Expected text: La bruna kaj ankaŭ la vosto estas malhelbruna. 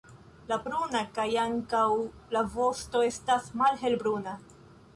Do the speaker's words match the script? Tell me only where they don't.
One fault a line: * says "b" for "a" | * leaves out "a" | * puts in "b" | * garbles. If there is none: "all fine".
all fine